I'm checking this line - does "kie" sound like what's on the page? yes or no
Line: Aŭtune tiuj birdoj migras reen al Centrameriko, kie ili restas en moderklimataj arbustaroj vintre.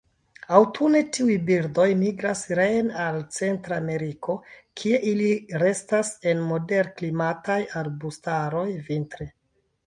yes